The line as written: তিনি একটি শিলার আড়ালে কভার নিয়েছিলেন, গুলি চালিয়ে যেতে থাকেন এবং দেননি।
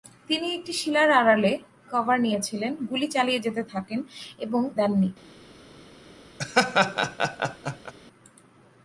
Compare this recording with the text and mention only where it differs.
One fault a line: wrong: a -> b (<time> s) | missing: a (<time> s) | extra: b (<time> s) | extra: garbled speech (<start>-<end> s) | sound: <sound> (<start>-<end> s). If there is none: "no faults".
sound: laugh (6.4-7.9 s)